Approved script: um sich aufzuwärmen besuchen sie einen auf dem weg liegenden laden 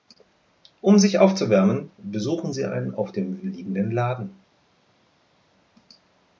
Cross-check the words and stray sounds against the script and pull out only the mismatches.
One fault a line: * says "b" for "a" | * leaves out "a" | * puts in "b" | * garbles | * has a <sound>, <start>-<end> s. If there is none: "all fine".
* leaves out "weg"